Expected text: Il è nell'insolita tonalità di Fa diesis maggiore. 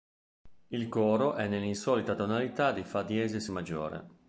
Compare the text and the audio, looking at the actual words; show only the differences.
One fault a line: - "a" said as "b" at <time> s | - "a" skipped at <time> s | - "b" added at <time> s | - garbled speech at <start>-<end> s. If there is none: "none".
- "coro" added at 0.9 s